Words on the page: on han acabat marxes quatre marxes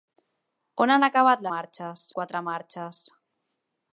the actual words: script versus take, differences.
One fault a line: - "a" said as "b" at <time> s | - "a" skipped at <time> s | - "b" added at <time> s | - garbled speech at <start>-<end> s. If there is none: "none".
none